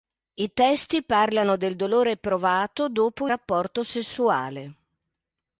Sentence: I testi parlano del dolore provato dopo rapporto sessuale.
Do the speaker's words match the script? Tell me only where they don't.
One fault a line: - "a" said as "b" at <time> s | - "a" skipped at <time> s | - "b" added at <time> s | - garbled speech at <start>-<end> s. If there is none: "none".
none